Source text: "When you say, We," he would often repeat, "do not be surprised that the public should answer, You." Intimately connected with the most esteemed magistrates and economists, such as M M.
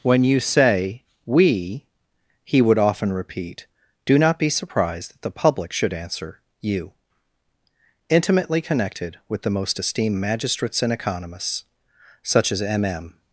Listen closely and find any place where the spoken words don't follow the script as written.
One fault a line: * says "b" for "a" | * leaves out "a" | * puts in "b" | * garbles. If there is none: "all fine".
all fine